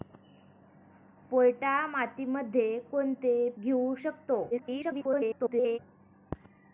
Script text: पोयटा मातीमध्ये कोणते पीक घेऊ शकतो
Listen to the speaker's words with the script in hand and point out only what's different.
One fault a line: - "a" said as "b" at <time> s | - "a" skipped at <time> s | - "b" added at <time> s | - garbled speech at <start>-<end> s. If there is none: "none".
- "पीक" skipped at 3.5 s
- garbled speech at 4.5-5.8 s